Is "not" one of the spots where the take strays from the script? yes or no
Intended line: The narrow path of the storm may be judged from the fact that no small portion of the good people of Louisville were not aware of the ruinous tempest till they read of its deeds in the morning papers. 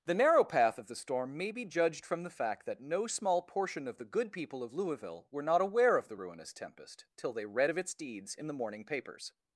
no